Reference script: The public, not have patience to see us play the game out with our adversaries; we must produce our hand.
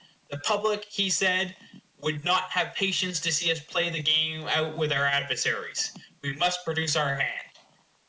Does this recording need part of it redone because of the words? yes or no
yes